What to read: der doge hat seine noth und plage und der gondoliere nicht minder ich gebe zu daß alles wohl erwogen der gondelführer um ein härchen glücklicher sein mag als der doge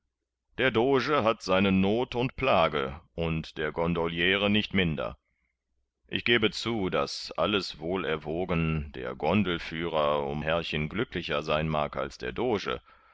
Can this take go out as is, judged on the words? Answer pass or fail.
fail